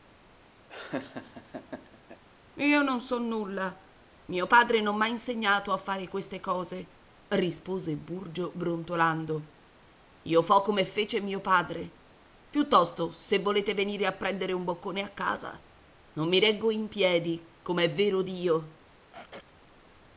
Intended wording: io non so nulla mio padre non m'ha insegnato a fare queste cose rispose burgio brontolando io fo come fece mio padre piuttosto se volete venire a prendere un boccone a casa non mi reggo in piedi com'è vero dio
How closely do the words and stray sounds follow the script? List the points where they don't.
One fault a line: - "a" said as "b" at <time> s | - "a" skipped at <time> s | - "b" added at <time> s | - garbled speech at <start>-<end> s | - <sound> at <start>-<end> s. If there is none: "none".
- laugh at 0.7-2.2 s
- throat clearing at 19.1-19.5 s